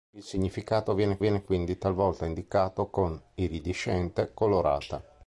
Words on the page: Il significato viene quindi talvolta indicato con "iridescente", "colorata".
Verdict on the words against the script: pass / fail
fail